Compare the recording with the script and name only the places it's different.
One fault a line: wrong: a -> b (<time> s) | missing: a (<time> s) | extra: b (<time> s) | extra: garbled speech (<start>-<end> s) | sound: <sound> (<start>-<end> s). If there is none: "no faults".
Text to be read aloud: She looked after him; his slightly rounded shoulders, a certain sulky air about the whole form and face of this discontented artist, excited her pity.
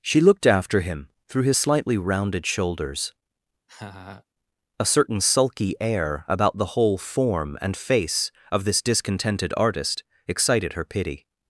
extra: through (1.3 s)
sound: laugh (3.7-4.2 s)